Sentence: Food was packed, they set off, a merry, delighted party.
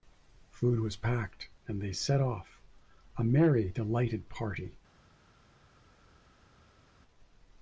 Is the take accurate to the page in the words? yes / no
no